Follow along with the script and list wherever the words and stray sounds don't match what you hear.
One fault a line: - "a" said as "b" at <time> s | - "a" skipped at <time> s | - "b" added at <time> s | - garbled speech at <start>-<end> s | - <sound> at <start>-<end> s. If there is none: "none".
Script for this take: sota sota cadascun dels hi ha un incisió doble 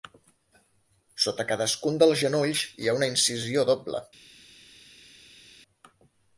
- "sota" skipped at 1.4 s
- "genolls" added at 2.2 s
- "un" said as "una" at 3.0 s